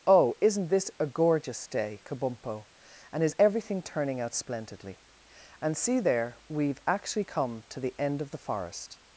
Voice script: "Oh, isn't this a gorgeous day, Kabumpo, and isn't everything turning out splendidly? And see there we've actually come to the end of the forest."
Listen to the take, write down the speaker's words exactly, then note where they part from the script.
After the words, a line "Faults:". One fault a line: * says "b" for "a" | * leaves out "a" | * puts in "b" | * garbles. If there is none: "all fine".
"Oh, isn't this a gorgeous day, Kabumpo, and is everything turning out splendidly? And see there we've actually come to the end of the forest."
Faults:
* says "is" for "isn't"